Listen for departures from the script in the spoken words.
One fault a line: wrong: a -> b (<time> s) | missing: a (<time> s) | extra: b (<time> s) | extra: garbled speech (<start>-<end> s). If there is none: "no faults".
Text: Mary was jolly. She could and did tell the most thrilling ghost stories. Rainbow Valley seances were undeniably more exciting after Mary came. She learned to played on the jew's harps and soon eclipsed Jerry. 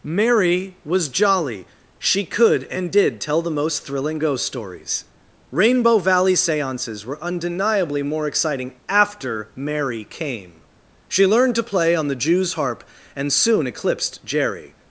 wrong: played -> play (11.6 s)
wrong: harps -> harp (12.5 s)